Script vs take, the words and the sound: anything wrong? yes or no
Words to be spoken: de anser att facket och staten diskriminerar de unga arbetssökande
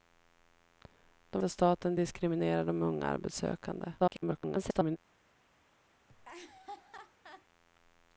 yes